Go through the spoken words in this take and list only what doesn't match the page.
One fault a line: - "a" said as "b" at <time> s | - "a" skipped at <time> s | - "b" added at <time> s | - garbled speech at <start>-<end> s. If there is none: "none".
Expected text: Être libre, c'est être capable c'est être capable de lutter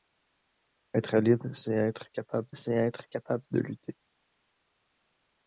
none